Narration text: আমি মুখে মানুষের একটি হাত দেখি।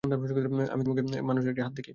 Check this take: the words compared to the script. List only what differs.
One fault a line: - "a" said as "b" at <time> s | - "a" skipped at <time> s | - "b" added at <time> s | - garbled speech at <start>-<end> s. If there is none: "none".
none